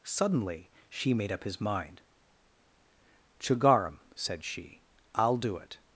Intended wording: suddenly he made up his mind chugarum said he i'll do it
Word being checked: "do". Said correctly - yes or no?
yes